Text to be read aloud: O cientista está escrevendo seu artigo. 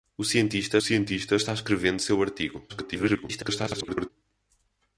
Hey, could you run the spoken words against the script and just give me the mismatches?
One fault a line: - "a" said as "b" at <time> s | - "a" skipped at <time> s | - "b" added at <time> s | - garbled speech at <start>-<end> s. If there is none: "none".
- "cientista" added at 0.8 s
- garbled speech at 2.7-4.1 s